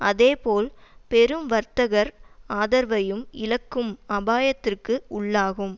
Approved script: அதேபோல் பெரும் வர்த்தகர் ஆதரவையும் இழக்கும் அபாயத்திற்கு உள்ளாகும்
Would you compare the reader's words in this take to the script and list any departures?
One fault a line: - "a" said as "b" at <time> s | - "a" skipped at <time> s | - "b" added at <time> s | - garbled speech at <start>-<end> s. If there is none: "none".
none